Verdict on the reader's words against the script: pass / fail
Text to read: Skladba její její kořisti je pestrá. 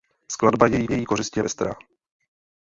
pass